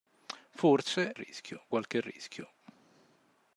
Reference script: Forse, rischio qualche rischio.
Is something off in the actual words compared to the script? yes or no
no